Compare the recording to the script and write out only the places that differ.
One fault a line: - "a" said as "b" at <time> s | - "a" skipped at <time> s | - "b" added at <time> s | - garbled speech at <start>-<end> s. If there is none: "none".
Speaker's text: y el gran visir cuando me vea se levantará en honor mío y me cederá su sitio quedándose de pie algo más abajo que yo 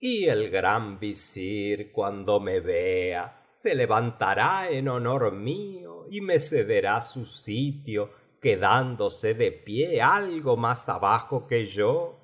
none